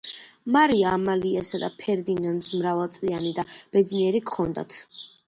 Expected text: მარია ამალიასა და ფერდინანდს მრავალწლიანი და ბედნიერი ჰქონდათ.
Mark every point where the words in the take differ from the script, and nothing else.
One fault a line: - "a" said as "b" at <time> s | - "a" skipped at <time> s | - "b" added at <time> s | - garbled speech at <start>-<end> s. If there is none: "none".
none